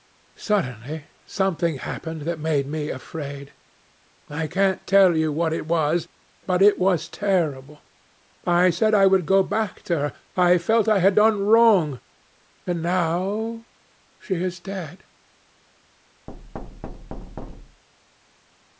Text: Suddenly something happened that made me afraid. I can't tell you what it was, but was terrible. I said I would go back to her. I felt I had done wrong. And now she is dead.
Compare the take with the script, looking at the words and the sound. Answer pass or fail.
fail